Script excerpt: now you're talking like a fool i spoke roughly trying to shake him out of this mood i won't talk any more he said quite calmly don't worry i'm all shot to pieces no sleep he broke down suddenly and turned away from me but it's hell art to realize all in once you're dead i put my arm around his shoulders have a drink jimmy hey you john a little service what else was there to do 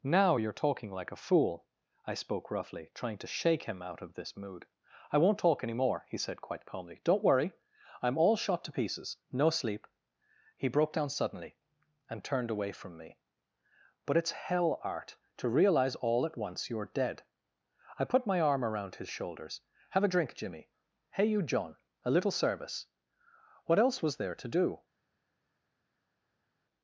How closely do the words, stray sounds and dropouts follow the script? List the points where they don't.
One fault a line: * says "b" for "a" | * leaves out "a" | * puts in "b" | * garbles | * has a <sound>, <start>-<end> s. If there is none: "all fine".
* says "at" for "in"